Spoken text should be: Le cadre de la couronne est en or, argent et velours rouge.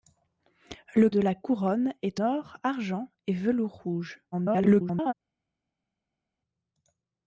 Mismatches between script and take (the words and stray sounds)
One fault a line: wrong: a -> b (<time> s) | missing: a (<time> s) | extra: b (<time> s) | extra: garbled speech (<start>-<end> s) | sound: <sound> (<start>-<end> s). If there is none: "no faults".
missing: cadre (1.1 s)
missing: en (2.2 s)
extra: garbled speech (4.3-5.1 s)